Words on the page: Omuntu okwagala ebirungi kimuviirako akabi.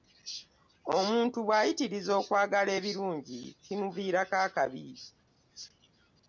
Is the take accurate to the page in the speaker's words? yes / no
no